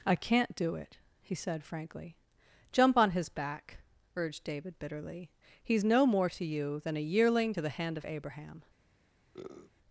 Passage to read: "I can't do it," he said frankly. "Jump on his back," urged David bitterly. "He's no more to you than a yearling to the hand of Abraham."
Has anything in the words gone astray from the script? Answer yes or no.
no